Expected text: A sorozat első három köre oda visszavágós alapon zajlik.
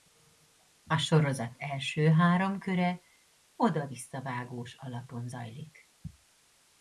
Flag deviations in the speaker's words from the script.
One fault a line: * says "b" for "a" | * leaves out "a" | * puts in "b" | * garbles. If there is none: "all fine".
all fine